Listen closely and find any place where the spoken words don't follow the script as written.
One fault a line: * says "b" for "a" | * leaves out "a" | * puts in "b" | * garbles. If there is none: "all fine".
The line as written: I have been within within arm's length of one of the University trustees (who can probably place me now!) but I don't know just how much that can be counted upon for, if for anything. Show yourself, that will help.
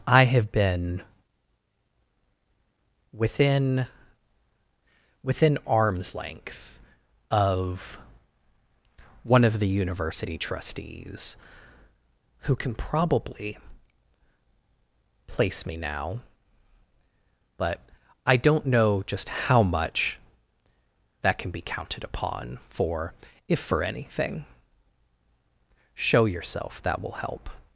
all fine